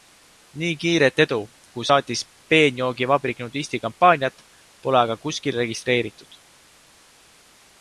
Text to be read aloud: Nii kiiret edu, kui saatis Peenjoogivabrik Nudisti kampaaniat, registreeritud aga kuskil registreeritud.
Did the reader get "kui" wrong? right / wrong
right